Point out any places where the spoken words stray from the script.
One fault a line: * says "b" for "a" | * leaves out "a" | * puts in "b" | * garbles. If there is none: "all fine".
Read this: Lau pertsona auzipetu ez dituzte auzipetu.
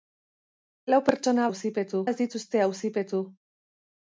all fine